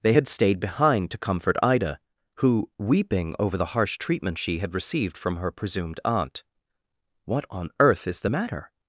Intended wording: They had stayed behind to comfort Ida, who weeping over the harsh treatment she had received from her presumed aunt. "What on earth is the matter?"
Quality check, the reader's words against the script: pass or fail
pass